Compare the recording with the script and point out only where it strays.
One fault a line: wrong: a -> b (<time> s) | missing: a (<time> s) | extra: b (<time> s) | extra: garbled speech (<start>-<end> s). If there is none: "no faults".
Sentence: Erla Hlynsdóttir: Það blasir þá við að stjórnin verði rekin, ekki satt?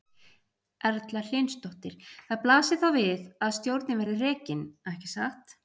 no faults